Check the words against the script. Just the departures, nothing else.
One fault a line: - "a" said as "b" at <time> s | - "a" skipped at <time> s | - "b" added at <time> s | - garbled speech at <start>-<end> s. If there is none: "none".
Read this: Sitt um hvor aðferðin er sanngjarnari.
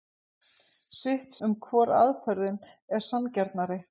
none